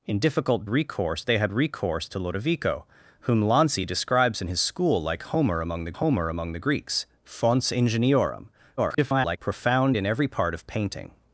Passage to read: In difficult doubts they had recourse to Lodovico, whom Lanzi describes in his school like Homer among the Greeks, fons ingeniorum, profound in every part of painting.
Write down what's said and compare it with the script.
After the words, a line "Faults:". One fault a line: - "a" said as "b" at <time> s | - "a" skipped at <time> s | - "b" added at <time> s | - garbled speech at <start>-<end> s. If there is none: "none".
In difficult recourse they had recourse to Lodovico, whom Lanzi describes in his school like Homer among the Homer among the Greeks, fons ingeniorum, [garbled] profound in every part of painting.
Faults:
- "doubts" said as "recourse" at 0.7 s
- "Homer among the" added at 5.9 s
- garbled speech at 8.8-9.4 s